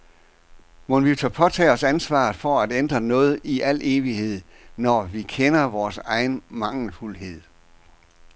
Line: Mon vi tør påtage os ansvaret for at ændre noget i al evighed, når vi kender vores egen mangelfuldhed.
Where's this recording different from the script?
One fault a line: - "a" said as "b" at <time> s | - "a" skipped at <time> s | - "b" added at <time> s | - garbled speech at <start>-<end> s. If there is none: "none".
none